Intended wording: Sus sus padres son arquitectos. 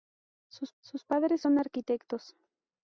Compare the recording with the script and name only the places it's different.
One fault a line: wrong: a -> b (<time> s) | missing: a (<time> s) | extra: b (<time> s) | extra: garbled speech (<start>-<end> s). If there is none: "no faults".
no faults